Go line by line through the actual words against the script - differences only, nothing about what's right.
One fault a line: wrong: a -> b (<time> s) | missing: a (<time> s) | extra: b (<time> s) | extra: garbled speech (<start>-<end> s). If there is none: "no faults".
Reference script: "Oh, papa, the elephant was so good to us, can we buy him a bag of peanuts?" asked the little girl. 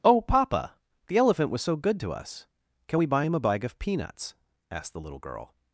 no faults